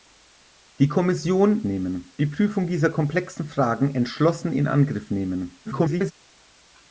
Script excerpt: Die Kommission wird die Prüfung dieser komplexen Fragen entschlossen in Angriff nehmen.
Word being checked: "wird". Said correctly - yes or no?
no